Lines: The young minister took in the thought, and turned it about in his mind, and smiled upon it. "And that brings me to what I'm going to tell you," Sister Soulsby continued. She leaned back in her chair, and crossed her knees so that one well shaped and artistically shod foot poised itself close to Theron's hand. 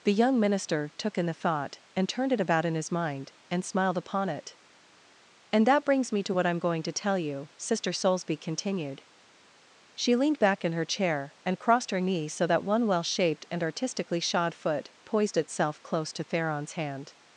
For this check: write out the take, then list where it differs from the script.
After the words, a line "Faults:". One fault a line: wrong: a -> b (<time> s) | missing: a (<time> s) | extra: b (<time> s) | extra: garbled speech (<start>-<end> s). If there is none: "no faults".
The young minister took in the thought, and turned it about in his mind, and smiled upon it. "And that brings me to what I'm going to tell you," Sister Soulsby continued. She leaned back in her chair, and crossed her knees so that one well shaped and artistically shod foot poised itself close to Theron's hand.
Faults:
no faults